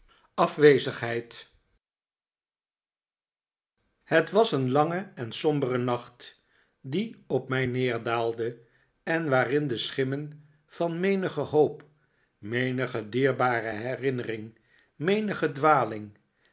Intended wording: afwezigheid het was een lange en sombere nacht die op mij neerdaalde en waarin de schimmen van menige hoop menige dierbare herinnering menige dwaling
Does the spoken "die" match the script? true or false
true